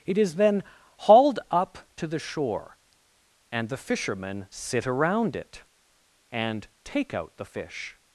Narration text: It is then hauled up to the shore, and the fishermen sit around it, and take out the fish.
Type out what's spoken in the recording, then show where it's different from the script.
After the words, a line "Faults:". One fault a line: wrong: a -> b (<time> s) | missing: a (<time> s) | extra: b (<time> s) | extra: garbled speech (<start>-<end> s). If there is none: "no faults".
It is then hauled up to the shore, and the fishermen sit around it, and take out the fish.
Faults:
no faults